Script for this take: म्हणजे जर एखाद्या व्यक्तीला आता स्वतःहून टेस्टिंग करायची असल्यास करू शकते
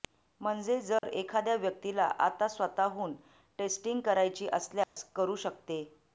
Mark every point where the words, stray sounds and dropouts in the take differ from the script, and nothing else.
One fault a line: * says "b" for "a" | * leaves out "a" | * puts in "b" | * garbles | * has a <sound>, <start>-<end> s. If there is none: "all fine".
* has a dropout, 1.0-1.0 s
* has a dropout, 4.8-5.0 s